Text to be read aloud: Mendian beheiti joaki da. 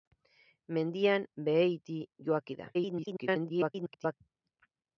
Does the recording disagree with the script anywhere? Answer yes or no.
yes